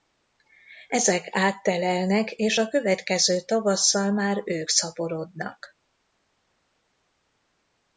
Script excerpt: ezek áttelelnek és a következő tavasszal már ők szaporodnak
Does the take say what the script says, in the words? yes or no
yes